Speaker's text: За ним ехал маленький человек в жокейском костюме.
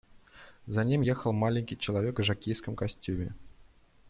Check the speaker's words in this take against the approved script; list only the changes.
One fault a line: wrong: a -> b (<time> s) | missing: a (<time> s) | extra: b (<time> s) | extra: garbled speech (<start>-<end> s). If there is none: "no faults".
no faults